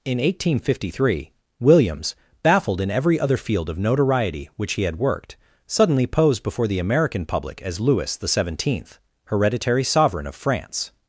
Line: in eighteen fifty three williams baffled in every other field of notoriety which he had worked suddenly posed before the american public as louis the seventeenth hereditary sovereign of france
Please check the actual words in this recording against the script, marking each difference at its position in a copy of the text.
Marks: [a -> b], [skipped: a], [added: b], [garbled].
in eighteen fifty three williams baffled in every other field of notoriety which he had worked suddenly posed before the american public as louis the seventeenth hereditary sovereign of france